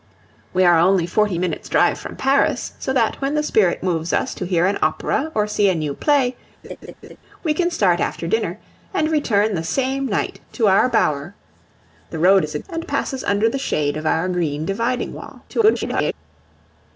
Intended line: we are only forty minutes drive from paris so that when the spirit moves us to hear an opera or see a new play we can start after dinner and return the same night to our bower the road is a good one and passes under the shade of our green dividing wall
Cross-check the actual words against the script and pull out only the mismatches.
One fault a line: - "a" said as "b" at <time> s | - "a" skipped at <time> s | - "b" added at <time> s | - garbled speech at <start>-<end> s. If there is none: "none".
- "good one" skipped at 12.6 s
- garbled speech at 15.5-16.1 s